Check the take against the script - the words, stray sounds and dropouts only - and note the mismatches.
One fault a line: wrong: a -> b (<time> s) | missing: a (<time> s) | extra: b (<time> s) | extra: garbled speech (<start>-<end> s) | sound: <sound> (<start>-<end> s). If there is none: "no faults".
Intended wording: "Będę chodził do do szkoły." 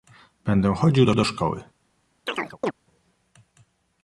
sound: chirp (2.3-2.7 s)